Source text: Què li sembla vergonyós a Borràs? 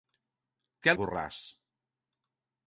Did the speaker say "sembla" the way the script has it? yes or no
no